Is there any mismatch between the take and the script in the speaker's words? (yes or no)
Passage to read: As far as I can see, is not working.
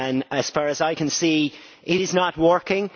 yes